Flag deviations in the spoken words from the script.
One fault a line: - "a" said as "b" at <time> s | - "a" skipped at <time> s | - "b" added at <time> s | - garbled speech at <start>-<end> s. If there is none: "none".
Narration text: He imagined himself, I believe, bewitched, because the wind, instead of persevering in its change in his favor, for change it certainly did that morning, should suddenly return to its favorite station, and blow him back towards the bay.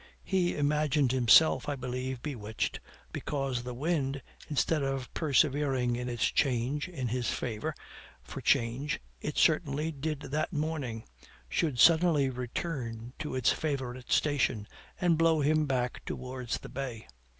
none